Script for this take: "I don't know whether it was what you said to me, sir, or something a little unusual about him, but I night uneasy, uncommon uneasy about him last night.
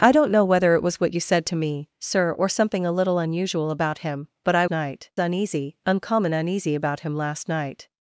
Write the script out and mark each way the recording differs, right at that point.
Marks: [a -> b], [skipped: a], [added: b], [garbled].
"I don't know whether it was what you said to me, sir, or something a little unusual about him, but I night uneasy, uncommon uneasy about him last night.